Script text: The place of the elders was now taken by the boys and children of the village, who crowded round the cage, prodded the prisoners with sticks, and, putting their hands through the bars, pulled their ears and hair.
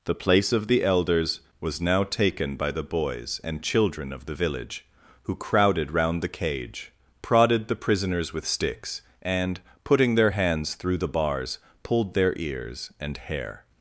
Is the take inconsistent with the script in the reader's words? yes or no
no